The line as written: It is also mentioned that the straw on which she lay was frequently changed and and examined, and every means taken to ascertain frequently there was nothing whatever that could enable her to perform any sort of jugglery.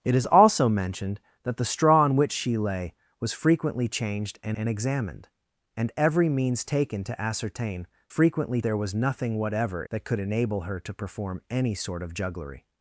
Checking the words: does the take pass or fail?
pass